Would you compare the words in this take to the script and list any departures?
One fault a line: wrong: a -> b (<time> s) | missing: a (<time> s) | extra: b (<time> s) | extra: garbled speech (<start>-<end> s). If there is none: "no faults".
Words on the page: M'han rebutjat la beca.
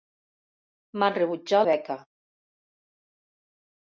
missing: la (1.7 s)